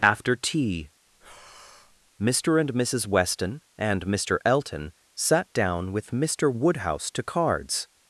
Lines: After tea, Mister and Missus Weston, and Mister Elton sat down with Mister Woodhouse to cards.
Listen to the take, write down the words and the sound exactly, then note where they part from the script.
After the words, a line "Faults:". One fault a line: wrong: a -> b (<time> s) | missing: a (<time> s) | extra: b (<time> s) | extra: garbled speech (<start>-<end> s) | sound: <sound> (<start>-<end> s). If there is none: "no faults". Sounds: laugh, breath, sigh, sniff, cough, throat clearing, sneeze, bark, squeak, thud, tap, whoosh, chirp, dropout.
After tea, Mister and Missus Weston, and Mister Elton sat down with Mister Woodhouse to cards.
Faults:
sound: breath (1.1-2.1 s)